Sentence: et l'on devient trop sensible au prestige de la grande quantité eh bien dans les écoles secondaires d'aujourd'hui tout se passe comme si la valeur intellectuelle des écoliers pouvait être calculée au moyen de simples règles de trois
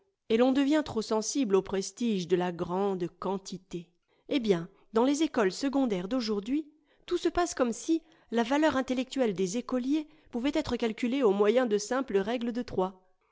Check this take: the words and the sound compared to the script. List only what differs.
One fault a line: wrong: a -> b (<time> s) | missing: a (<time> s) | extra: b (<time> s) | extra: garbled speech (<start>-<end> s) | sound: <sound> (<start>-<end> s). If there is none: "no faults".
no faults